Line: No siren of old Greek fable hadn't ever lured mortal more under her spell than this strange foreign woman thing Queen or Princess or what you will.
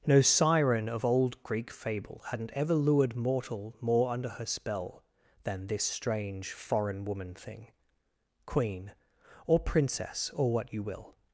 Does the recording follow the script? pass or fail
pass